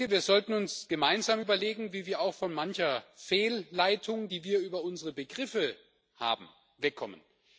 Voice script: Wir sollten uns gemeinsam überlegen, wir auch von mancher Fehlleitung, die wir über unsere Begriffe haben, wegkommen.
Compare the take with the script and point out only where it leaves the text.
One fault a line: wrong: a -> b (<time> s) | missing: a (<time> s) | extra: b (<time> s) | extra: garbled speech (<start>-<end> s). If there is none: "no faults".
extra: wie (1.9 s)